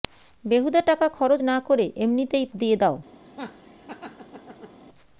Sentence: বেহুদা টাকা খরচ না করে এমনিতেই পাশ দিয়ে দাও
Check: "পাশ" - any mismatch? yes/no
yes